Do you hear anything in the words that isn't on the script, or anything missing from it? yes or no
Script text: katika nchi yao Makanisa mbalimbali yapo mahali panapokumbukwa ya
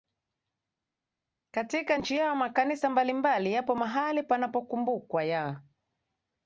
no